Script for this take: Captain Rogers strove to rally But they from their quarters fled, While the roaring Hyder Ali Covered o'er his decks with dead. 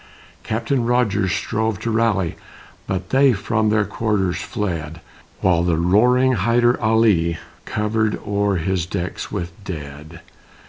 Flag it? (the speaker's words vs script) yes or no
no